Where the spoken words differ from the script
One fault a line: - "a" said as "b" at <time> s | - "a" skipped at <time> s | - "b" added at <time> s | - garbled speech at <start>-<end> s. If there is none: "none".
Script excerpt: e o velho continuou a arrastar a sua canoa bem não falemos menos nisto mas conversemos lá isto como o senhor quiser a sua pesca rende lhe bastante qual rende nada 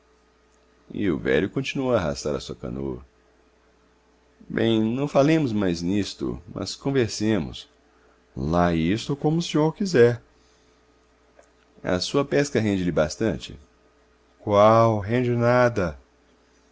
- "menos" said as "mais" at 5.5 s